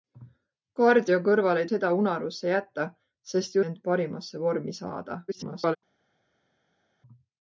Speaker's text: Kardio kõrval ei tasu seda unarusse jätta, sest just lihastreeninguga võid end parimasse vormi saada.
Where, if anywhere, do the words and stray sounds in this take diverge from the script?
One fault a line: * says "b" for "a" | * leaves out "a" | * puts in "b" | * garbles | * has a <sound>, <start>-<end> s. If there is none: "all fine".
* leaves out "tasu"
* leaves out "just lihastreeninguga võid"
* garbles